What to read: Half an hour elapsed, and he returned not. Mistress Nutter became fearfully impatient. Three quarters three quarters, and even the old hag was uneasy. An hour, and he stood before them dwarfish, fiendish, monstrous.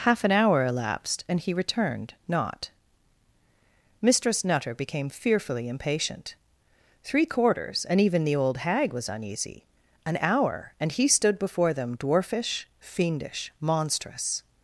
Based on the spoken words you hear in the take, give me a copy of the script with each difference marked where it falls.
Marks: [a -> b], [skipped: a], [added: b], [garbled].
Half an hour elapsed, and he returned not. Mistress Nutter became fearfully impatient. Three quarters [skipped: three quarters,] and even the old hag was uneasy. An hour, and he stood before them dwarfish, fiendish, monstrous.